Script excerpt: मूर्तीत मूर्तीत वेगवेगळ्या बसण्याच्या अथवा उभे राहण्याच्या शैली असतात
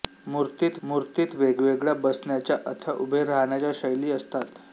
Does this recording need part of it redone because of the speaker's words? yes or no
no